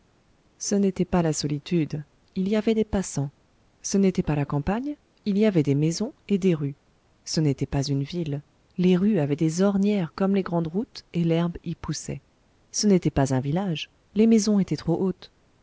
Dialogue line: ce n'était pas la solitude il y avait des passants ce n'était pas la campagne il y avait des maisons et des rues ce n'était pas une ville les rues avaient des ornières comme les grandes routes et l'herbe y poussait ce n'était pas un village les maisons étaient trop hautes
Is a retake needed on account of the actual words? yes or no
no